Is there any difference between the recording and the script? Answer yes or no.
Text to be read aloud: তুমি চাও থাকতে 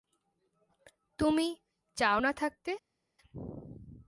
yes